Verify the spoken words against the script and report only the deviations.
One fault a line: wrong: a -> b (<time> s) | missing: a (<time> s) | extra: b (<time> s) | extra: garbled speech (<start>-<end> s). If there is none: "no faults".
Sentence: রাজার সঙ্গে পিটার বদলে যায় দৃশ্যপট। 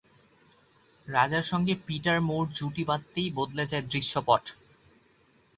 extra: মুর জুটি বাঁধতেই (2.2 s)